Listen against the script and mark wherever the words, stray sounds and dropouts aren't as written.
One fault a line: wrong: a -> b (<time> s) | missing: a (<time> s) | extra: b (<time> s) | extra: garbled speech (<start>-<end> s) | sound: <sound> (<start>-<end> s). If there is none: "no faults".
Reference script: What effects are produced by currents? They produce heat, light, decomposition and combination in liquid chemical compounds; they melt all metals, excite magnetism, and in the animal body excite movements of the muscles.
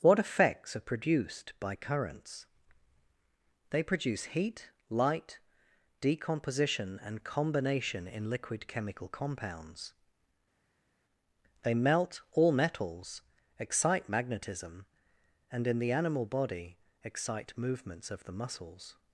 no faults